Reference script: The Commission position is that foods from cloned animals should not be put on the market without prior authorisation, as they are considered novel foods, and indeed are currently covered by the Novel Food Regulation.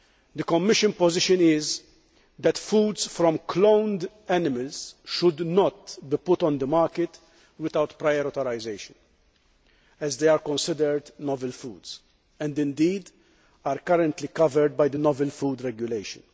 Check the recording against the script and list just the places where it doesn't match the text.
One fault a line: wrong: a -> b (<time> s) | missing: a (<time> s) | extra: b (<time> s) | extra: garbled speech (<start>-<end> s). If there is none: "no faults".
no faults